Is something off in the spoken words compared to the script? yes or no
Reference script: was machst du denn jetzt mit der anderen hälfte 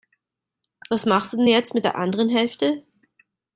no